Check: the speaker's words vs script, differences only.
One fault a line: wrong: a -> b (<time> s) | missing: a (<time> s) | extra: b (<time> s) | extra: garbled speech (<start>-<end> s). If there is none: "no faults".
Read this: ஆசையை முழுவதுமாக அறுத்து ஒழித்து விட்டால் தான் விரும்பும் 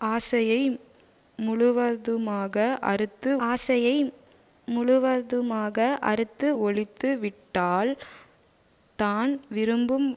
extra: ஆசையை முழுவதுமாக அறுத்து (3.5 s)